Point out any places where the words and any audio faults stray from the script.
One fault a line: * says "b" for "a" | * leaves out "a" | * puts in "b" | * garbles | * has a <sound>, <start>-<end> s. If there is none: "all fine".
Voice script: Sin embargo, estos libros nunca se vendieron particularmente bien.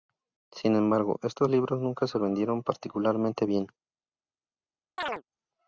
* has a chirp, 5.0-5.2 s